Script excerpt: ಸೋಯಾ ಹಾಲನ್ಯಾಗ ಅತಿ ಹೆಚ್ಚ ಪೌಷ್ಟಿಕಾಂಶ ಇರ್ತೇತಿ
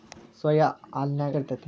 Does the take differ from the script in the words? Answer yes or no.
yes